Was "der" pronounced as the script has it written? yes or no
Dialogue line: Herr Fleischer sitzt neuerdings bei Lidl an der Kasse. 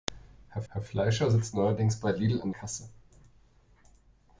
no